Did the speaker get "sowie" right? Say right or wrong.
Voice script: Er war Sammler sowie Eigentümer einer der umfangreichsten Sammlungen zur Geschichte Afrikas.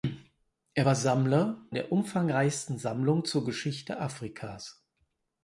wrong